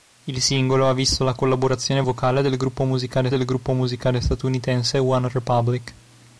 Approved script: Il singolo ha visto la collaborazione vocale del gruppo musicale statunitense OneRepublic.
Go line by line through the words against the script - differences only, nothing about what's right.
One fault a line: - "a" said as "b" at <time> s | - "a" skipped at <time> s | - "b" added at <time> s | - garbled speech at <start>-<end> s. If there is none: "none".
- "del gruppo musicale" added at 3.3 s